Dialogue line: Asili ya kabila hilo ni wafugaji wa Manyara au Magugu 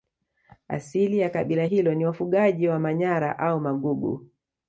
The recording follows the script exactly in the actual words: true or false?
true